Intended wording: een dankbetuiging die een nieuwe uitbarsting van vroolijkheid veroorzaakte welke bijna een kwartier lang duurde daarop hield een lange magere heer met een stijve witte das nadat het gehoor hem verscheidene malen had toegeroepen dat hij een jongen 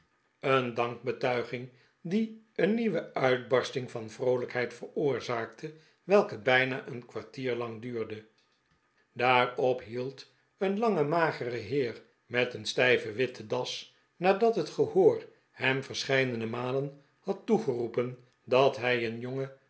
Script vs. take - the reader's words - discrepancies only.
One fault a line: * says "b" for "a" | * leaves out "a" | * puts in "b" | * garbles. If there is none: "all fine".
all fine